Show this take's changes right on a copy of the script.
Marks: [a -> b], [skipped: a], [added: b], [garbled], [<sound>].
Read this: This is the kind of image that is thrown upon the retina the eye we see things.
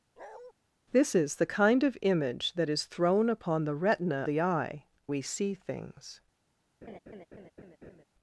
[bark] This is the kind of image that is thrown upon the retina the eye we see things. [laugh]